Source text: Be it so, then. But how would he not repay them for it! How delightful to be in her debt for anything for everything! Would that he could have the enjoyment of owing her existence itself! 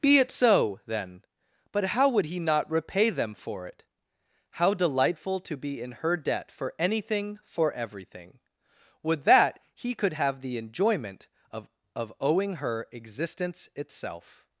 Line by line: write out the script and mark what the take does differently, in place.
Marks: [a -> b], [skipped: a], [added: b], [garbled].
Be it so, then. But how would he not repay them for it! How delightful to be in her debt for anything for everything! Would that he could have the enjoyment of [added: of] owing her existence itself!